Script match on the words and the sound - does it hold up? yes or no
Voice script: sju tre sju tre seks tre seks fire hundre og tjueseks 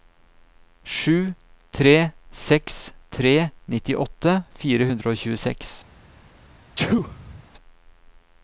no